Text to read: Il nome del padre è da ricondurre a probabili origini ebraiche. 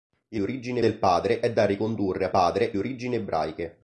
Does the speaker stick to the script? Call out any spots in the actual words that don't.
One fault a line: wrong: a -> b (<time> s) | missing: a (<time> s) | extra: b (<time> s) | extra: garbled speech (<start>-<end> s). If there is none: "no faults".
wrong: nome -> origini (0.4 s)
wrong: probabili -> padre (2.3 s)